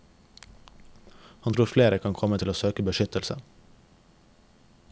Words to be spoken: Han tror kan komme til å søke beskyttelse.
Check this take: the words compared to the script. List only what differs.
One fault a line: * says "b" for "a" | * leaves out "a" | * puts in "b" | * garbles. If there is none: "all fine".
* puts in "flere"